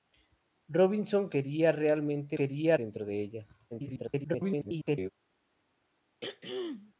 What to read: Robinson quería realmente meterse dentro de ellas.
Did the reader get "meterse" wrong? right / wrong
wrong